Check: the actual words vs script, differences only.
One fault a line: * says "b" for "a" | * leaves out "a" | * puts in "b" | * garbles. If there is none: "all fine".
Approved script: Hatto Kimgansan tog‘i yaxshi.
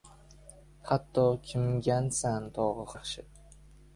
all fine